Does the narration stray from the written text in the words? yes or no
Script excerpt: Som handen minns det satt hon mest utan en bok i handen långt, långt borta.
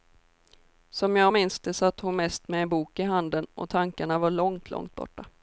yes